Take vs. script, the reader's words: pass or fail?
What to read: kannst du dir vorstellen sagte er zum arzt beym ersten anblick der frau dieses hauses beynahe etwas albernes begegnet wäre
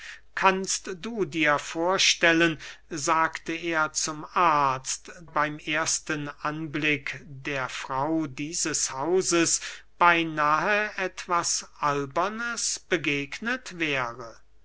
pass